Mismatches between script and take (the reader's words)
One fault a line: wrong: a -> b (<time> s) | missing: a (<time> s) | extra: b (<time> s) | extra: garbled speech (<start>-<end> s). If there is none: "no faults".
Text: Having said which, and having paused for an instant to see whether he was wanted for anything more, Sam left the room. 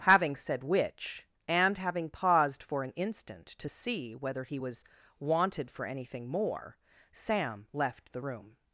no faults